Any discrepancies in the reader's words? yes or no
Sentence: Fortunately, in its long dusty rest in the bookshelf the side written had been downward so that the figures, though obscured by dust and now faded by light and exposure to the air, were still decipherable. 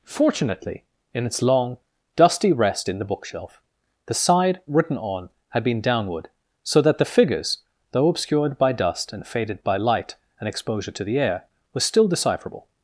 yes